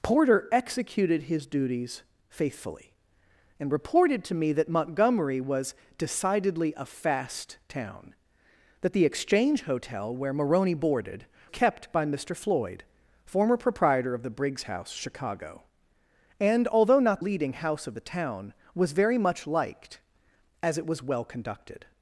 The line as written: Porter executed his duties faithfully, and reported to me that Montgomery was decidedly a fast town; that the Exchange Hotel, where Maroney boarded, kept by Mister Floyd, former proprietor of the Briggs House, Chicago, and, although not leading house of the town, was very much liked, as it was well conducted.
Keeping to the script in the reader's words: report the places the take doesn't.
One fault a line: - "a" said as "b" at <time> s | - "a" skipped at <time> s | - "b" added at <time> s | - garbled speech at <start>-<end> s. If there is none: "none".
none